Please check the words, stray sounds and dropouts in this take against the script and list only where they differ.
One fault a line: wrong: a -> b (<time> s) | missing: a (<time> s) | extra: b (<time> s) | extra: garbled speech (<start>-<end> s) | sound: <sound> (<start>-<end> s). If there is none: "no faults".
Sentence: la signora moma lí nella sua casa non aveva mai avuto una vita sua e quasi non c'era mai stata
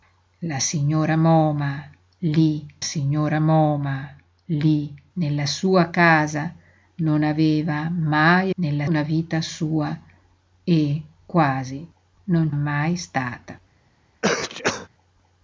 extra: signora moma lí (2.8 s)
wrong: avuto -> nella (8.5 s)
missing: c'era (12.5 s)
sound: sneeze (14.2-14.9 s)